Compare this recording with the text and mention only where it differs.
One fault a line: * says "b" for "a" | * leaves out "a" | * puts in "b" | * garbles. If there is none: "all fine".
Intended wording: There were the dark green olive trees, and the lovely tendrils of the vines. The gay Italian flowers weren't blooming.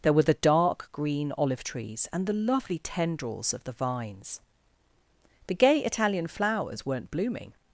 all fine